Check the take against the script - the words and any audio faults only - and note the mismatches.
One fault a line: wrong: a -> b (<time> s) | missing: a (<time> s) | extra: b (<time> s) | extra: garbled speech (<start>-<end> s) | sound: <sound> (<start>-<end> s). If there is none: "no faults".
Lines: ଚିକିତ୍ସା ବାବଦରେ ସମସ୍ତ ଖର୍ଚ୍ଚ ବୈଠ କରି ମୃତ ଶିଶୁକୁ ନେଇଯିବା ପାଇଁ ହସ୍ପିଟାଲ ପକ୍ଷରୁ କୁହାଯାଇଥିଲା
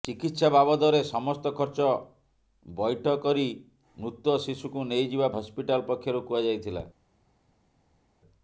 missing: ପାଇଁ (5.3 s)